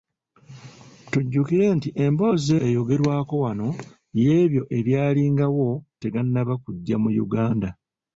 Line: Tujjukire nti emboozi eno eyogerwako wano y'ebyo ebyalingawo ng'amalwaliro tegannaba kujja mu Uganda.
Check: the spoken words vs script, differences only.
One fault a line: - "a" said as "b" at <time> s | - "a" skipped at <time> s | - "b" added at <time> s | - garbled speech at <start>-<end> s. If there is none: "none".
- "eno" skipped at 2.5 s
- "ng'amalwaliro" skipped at 5.7 s